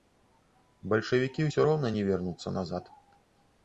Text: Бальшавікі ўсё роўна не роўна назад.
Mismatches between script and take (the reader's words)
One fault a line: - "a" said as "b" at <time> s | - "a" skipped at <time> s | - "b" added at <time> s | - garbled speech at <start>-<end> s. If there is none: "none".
- "роўна" said as "вернуцца" at 2.1 s